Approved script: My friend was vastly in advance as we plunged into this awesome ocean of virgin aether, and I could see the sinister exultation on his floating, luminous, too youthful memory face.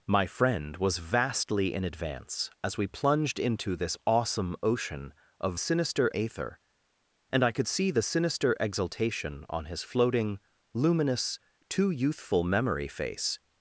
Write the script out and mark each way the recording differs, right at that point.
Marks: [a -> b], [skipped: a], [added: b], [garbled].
My friend was vastly in advance as we plunged into this awesome ocean of [virgin -> sinister] aether, and I could see the sinister exultation on his floating, luminous, too youthful memory face.